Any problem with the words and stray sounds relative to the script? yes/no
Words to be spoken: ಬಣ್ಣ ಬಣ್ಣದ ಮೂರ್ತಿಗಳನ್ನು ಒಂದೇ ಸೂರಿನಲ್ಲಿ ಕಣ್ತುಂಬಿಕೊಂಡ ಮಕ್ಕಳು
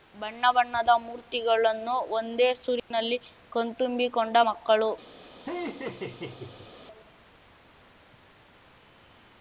yes